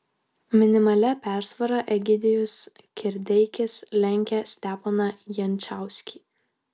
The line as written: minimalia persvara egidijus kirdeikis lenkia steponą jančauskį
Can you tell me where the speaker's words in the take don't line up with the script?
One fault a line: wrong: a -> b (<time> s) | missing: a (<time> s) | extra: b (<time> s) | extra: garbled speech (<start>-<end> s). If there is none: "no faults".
no faults